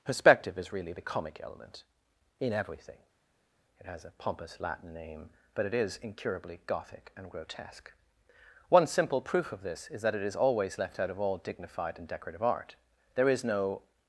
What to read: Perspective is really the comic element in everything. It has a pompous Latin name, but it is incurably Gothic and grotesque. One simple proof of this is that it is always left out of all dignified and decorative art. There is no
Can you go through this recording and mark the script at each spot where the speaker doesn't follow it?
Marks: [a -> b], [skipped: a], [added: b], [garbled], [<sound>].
Perspective is really the comic element in everything. It has a pompous Latin name, but it is incurably Gothic and grotesque. One simple proof of this is that it is always left out of all dignified and decorative art. There is no